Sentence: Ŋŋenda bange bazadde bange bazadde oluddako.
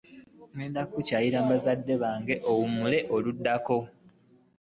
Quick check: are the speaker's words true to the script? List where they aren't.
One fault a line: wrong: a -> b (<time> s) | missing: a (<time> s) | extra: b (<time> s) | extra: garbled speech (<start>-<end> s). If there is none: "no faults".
wrong: bange -> kukyalira (0.9 s)
wrong: bazadde -> oluwummula (2.5 s)